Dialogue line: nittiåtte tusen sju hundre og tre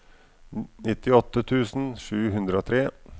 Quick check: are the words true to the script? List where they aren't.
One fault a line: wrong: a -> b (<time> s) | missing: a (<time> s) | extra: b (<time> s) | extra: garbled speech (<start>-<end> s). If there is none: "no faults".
no faults